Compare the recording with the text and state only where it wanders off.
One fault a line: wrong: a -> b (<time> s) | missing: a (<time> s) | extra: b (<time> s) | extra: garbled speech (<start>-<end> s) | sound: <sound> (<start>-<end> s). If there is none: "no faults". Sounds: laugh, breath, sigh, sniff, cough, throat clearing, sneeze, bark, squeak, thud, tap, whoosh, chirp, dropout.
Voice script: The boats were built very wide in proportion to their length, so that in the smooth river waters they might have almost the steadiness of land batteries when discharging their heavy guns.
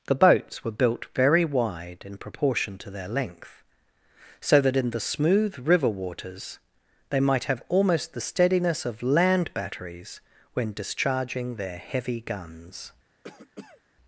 sound: cough (13.2-13.8 s)